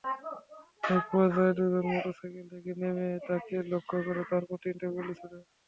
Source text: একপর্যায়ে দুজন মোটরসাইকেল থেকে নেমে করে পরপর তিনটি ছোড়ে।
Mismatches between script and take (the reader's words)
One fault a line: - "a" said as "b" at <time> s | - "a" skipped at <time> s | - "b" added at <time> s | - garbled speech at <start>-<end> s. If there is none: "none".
- "তাঁকে লক্ষ্য" added at 3.3 s
- "গুলি" added at 5.0 s